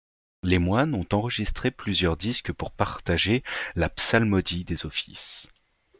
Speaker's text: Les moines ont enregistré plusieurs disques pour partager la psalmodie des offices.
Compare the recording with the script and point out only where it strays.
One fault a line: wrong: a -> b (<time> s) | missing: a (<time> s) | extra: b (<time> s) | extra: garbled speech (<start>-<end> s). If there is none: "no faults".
no faults